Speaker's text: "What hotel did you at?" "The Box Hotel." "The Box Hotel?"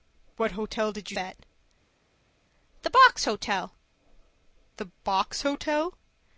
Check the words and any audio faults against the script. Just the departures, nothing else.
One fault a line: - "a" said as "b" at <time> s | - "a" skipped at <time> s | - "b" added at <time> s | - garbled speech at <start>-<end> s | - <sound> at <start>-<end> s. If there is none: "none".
none